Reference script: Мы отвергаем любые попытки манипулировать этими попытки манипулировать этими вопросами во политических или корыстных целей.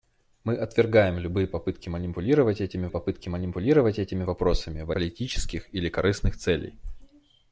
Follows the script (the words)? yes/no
yes